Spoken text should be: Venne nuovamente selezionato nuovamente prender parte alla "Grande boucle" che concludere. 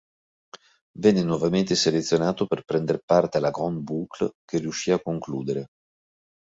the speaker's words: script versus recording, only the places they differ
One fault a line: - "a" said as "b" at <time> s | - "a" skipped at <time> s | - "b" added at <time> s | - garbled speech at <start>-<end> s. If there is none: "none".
- "nuovamente" said as "per" at 2.5 s
- "riuscì a" added at 4.6 s